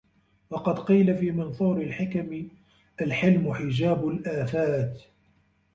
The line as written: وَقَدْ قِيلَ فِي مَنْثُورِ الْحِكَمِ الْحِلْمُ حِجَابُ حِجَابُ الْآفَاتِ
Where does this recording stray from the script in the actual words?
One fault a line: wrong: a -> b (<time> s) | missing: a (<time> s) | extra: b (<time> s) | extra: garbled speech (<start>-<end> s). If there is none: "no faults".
missing: حِجَابُ (4.1 s)